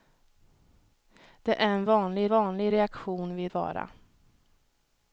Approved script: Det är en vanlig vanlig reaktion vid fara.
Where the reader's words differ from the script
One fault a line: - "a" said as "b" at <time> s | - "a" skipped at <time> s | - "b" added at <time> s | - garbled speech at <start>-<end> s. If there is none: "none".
none